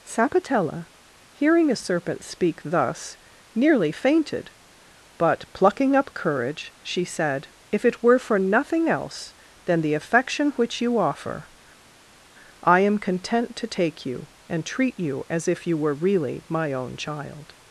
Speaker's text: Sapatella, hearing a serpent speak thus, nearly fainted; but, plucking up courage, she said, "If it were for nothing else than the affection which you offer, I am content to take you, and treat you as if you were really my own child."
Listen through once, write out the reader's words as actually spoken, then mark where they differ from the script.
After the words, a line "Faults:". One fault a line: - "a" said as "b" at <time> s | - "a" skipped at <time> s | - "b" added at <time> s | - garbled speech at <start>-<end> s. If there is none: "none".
Sapatella, hearing a serpent speak thus, nearly fainted; but, plucking up courage, she said, "If it were for nothing else than the affection which you offer, I am content to take you, and treat you as if you were really my own child."
Faults:
none